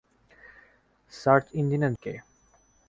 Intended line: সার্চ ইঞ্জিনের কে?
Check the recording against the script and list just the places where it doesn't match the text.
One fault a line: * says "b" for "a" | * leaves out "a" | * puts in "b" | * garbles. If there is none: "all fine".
all fine